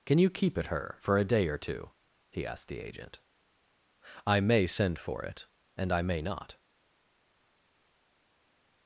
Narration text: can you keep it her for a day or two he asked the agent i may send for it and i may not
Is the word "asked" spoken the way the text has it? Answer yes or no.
yes